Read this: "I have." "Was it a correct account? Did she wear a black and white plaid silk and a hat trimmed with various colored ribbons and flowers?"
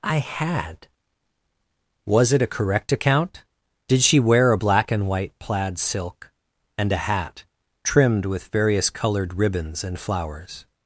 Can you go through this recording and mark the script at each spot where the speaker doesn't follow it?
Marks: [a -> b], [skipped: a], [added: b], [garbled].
"I [have." -> had] "Was it a correct account? Did she wear a black and white plaid silk and a hat trimmed with various colored ribbons and flowers?"